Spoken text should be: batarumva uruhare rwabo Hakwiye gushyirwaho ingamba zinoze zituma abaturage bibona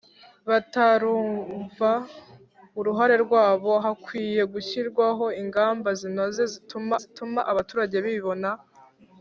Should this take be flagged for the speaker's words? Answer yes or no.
yes